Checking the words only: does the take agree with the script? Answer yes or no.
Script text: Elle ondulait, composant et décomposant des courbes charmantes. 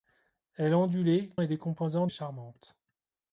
no